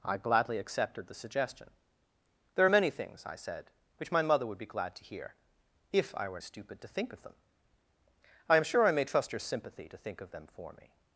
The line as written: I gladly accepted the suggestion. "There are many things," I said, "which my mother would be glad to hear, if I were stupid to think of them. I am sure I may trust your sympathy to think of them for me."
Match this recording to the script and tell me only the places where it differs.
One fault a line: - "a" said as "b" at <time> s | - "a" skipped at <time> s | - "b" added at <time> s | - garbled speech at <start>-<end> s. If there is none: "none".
none